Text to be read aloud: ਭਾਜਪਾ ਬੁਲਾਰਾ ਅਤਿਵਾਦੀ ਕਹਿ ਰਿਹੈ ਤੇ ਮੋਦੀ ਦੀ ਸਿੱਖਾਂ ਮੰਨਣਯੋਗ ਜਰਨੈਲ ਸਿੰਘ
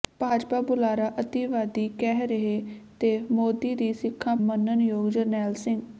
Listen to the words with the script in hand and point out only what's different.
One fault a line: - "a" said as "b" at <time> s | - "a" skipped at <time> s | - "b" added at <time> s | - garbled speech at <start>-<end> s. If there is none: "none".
none